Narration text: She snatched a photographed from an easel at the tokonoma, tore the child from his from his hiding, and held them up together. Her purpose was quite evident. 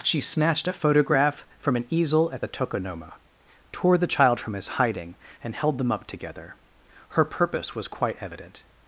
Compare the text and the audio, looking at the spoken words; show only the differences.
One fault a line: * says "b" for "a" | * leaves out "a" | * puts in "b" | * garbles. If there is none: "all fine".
* says "photograph" for "photographed"
* leaves out "from his"